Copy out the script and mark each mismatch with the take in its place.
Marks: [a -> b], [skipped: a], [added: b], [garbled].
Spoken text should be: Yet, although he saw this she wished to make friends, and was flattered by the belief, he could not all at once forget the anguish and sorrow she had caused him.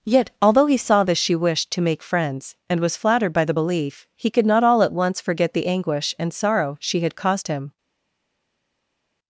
Yet, although he saw this she wished to make friends, and was flattered by the belief, he could not all at once forget the anguish and sorrow she had caused him.